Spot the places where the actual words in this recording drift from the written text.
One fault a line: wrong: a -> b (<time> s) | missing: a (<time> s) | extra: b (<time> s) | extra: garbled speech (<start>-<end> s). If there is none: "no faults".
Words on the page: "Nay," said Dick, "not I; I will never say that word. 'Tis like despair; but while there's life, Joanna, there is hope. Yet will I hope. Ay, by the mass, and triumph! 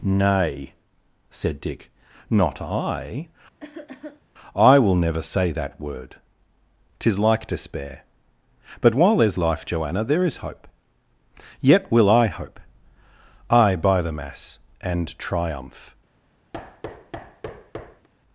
no faults